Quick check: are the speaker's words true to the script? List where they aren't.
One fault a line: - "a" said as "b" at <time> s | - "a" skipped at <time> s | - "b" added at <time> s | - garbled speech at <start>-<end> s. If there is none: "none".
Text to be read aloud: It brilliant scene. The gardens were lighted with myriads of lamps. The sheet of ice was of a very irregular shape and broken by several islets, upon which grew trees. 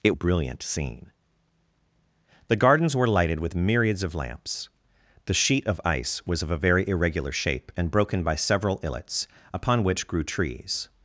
none